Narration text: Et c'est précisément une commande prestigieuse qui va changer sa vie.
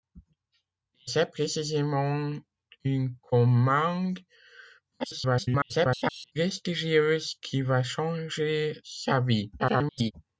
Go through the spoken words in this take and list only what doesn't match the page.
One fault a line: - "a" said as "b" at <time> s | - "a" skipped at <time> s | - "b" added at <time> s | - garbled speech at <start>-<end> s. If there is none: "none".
- garbled speech at 5.0-6.3 s
- garbled speech at 9.6-10.1 s